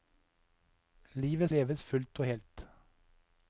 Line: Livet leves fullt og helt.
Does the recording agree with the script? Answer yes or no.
yes